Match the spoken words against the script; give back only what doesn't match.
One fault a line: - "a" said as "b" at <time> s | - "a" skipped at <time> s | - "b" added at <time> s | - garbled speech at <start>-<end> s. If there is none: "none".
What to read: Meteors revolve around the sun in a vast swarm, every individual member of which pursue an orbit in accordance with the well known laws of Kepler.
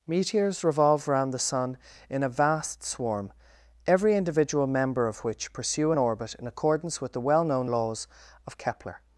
none